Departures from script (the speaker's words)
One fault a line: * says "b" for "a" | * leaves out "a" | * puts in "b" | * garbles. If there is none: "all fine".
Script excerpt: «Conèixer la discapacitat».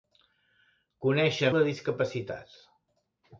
all fine